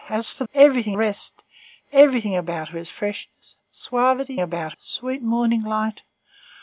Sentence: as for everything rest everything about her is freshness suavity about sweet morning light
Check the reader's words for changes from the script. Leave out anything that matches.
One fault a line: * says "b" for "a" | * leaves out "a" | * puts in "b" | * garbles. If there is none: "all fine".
all fine